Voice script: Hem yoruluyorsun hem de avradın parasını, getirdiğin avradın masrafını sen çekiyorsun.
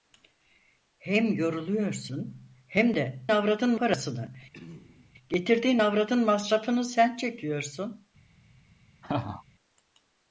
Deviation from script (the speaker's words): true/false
false